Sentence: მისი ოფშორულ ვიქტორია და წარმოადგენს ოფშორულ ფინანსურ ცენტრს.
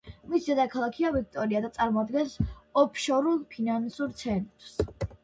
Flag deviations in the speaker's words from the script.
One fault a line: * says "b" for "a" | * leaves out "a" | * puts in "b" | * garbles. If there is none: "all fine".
* says "დედაქალაქია" for "ოფშორულ"